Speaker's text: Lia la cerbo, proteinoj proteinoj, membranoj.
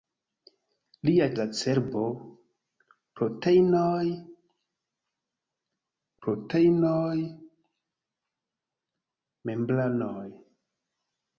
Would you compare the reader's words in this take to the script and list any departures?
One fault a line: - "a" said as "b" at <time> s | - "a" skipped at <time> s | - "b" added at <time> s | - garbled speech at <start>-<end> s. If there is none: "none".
none